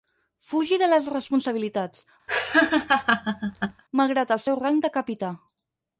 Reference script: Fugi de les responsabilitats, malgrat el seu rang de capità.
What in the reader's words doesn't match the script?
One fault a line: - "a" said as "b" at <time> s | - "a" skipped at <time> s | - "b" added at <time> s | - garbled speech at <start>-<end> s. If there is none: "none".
none